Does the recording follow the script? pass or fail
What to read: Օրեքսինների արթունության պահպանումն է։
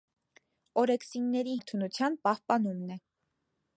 pass